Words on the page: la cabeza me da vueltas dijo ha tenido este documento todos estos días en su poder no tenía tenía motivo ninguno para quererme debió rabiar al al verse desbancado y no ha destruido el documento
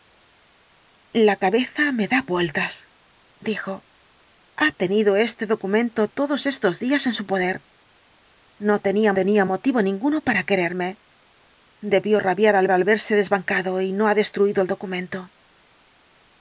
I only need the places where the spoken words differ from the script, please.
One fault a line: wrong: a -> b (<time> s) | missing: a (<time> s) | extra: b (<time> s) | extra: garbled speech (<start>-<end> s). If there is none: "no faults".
no faults